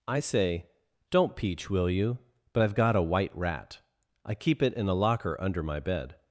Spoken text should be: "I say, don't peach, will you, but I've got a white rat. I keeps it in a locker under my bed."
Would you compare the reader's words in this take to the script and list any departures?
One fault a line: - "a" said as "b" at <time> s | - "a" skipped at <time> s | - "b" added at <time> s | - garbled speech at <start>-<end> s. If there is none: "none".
- "keeps" said as "keep" at 4.3 s